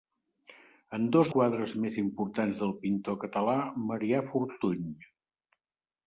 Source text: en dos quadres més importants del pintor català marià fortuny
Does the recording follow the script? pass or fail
pass